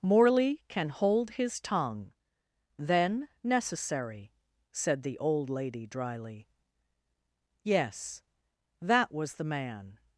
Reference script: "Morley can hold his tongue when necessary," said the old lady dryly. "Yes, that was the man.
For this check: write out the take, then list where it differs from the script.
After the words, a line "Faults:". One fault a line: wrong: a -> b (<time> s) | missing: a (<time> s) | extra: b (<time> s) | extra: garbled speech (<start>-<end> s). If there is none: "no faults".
"Morley can hold his tongue then necessary," said the old lady dryly. "Yes, that was the man.
Faults:
wrong: when -> then (2.8 s)